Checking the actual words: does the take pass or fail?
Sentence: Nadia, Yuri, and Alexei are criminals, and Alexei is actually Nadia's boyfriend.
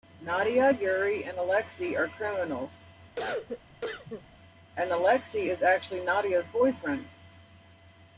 pass